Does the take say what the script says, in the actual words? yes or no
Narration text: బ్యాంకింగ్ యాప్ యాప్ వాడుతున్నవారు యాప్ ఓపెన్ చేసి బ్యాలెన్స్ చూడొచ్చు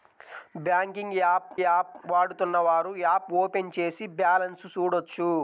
yes